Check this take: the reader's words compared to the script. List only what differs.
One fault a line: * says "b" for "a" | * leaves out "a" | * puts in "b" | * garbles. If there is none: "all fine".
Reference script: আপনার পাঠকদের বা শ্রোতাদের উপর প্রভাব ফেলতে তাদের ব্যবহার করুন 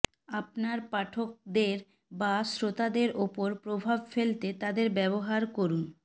all fine